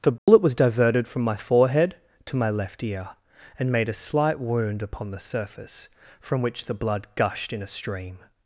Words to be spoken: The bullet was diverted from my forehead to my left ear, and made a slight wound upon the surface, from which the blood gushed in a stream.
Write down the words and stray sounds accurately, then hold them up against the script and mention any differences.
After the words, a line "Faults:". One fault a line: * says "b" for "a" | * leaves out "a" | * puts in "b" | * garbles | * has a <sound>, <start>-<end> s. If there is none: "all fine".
The bullet was diverted from my forehead to my left ear, and made a slight wound upon the surface, from which the blood gushed in a stream.
Faults:
* has a dropout, 0.2-0.3 s